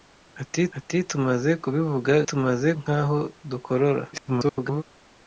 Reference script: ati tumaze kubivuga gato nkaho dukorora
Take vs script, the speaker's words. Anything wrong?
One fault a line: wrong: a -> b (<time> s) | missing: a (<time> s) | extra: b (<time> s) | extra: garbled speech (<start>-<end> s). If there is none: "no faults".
extra: ati (0.8 s)
wrong: gato -> tumaze (2.3 s)
extra: garbled speech (4.1-4.8 s)